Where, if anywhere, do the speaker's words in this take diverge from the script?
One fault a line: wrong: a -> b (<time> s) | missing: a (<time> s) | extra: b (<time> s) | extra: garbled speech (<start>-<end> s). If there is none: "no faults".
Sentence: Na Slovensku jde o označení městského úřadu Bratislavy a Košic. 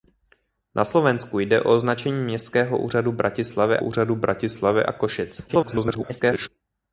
extra: úřadu Bratislavy (3.8 s)
extra: garbled speech (5.5-6.5 s)